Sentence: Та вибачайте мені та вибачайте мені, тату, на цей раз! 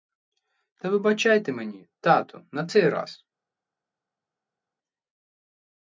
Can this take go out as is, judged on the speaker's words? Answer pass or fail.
fail